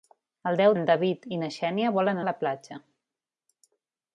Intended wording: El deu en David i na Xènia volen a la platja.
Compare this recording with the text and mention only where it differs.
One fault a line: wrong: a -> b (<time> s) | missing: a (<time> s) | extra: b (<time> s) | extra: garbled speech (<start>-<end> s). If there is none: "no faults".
no faults